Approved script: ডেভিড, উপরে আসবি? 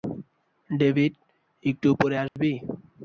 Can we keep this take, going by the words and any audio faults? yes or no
no